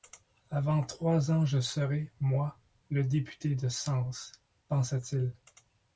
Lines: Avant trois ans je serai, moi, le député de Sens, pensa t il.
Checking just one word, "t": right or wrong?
right